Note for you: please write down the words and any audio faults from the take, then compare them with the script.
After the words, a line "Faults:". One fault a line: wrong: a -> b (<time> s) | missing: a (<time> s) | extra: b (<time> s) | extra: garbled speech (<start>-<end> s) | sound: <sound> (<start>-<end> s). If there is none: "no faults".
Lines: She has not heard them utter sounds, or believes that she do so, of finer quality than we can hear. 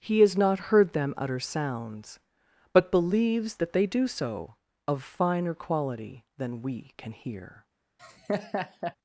He has not heard them utter sounds, but believes that they do so, of finer quality than we can hear.
Faults:
wrong: She -> He (0.0 s)
wrong: or -> but (2.7 s)
wrong: she -> they (3.7 s)
sound: laugh (8.0-9.0 s)